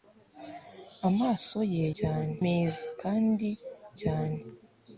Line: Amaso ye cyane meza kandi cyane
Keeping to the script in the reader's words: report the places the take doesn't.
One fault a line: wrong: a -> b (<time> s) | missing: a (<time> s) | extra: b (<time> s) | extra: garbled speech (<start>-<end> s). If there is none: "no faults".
no faults